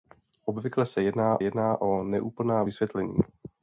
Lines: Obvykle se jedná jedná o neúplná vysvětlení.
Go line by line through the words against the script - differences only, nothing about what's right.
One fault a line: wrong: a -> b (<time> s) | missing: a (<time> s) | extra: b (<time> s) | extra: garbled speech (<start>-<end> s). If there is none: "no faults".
no faults